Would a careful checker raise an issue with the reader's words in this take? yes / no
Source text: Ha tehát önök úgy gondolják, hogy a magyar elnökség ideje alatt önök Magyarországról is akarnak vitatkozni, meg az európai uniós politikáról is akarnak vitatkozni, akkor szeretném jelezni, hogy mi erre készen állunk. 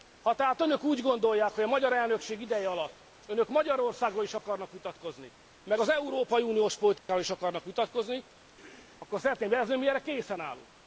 no